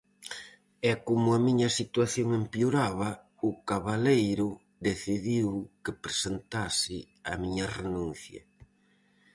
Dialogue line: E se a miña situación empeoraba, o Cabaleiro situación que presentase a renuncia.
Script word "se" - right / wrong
wrong